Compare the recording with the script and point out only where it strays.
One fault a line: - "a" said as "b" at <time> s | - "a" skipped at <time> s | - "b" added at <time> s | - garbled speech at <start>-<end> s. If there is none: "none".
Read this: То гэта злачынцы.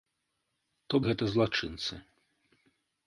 none